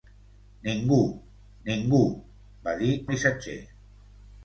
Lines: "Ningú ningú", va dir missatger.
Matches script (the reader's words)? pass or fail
pass